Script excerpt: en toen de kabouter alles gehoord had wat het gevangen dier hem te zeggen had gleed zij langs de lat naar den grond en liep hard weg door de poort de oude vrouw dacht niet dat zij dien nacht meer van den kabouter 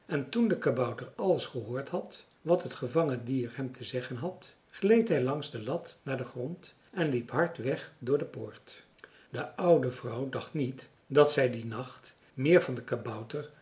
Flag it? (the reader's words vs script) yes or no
yes